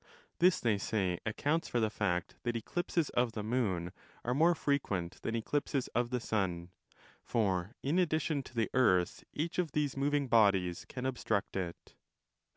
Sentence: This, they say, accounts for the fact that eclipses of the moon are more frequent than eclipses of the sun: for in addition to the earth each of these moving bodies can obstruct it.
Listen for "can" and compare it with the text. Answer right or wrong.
right